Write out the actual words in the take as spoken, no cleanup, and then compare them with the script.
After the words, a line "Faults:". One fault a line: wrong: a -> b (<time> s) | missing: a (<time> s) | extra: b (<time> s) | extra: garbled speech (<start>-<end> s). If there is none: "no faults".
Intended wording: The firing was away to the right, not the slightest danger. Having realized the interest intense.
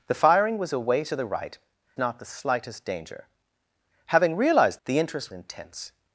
The firing was away to the right, not the slightest danger. Having realized the interest intense.
Faults:
no faults